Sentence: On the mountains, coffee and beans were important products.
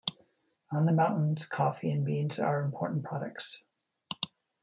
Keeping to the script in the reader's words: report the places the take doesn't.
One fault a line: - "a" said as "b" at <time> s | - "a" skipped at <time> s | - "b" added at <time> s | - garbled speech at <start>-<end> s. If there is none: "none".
- "were" said as "are" at 2.4 s